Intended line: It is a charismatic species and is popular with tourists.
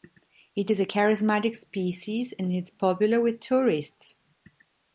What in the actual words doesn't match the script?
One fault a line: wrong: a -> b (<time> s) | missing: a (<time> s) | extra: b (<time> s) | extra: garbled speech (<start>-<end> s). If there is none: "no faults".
no faults